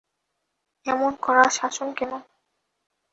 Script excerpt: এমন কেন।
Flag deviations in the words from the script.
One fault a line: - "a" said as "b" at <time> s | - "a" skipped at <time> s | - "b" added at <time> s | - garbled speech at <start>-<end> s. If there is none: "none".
- "কড়া শাসন" added at 1.2 s